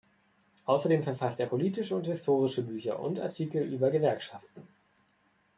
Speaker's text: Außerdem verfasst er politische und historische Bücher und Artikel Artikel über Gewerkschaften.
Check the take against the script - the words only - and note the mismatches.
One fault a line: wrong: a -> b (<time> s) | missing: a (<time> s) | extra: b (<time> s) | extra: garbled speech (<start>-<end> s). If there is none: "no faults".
missing: Artikel (3.6 s)